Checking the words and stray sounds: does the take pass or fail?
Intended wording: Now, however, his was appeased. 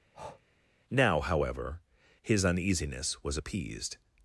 fail